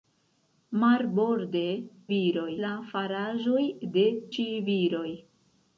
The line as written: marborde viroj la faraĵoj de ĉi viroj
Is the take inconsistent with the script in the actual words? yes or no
no